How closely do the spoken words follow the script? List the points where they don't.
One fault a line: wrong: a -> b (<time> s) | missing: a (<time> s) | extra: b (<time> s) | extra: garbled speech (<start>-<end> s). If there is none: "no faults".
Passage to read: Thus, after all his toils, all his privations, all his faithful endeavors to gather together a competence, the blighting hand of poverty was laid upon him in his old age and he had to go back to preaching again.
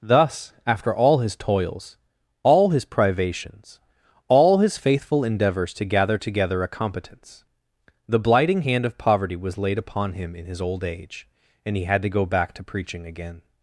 no faults